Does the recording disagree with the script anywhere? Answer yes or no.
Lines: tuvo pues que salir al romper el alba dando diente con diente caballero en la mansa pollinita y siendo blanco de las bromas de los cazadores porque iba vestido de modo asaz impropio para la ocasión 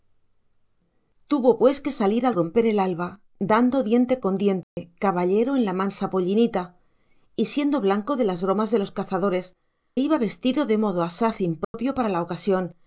yes